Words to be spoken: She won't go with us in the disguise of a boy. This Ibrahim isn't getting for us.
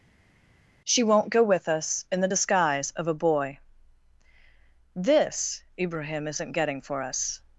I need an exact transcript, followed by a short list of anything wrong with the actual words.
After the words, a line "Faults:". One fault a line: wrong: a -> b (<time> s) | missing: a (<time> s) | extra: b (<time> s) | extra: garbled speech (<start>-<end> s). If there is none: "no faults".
She won't go with us in the disguise of a boy. This Ibrahim isn't getting for us.
Faults:
no faults